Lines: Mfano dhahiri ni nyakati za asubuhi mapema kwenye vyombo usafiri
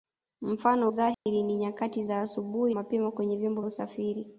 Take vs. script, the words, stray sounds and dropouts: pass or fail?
fail